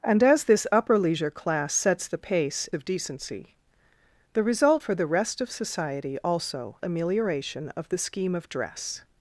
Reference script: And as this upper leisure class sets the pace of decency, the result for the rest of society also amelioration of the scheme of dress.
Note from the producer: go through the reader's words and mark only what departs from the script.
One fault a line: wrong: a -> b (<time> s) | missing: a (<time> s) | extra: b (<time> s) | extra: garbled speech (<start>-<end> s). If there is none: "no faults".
no faults